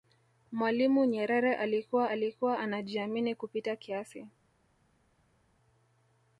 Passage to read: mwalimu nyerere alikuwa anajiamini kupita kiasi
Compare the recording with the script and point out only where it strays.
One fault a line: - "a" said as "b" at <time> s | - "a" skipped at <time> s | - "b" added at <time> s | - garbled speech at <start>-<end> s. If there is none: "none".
- "alikuwa" added at 2.0 s